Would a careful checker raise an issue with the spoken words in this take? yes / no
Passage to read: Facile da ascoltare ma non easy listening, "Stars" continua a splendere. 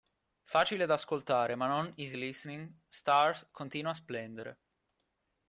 no